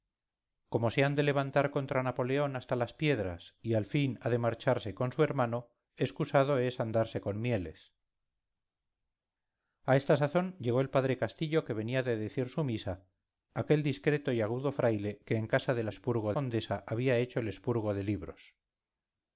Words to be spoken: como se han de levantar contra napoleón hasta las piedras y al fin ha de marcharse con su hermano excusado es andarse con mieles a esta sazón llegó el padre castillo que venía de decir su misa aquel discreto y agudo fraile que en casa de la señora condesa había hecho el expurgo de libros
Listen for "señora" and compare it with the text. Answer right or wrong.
wrong